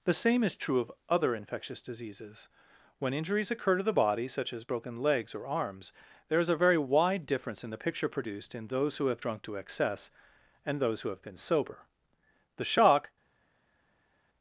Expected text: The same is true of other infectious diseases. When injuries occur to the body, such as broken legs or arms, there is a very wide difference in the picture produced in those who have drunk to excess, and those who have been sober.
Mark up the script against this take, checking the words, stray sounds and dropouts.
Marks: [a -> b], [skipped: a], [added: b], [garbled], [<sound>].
The same is true of other infectious diseases. When injuries occur to the body, such as broken legs or arms, there is a very wide difference in the picture produced in those who have drunk to excess, and those who have been sober. [added: The shock]